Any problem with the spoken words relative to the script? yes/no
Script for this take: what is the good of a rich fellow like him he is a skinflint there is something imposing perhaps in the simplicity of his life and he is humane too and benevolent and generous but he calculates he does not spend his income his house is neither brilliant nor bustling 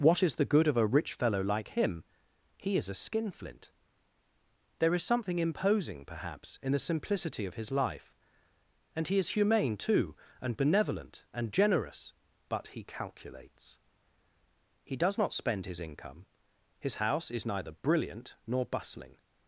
no